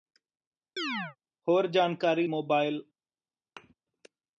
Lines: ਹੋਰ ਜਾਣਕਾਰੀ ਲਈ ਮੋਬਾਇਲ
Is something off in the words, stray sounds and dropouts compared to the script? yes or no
yes